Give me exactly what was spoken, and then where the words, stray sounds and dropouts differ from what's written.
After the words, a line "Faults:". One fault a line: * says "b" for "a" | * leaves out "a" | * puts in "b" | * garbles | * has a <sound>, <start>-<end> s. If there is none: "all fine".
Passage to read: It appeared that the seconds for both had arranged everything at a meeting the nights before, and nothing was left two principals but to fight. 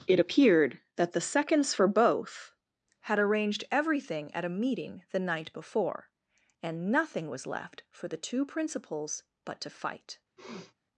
It appeared that the seconds for both had arranged everything at a meeting the night before, and nothing was left for the two principals but to fight.
Faults:
* says "night" for "nights"
* puts in "for the"
* has a sniff, 10.4-10.7 s